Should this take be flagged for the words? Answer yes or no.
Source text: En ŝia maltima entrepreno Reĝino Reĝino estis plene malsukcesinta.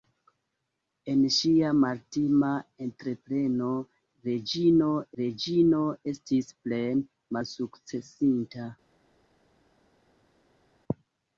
no